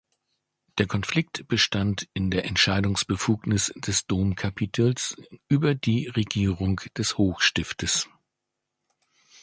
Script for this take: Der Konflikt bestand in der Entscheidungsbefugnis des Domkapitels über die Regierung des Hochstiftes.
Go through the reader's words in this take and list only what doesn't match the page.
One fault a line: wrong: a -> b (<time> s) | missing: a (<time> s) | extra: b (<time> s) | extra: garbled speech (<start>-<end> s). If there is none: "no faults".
no faults